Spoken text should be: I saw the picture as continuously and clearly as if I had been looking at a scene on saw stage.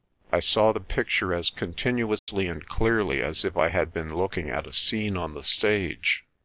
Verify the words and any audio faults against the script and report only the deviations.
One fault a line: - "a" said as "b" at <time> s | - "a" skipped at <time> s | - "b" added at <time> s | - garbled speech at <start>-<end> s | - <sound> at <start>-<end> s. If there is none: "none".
- dropout at 2.2-2.3 s
- "saw" said as "the" at 5.3 s